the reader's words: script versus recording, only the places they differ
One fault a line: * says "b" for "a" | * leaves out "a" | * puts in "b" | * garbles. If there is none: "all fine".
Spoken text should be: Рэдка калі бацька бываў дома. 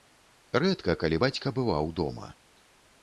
all fine